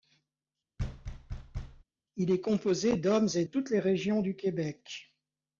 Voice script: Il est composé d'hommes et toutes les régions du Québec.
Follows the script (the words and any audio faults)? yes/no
no